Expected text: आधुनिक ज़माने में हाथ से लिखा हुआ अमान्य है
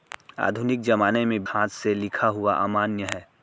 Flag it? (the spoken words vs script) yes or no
no